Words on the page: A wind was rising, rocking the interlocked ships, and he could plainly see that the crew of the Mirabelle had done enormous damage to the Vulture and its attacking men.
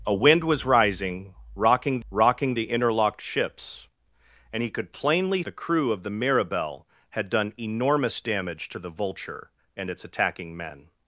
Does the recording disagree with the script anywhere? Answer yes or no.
yes